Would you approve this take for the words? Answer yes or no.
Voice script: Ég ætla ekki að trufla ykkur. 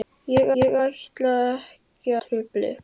no